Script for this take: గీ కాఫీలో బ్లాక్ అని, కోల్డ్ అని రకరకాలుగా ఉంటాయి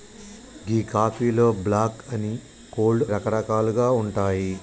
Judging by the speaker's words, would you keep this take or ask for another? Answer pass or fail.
fail